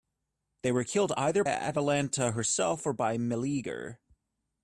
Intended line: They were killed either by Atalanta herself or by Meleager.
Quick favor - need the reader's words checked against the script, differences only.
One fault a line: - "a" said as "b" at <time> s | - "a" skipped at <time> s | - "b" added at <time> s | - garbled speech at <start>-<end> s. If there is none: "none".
- "by" skipped at 1.4 s